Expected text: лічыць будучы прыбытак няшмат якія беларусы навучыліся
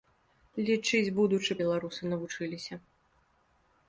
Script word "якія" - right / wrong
wrong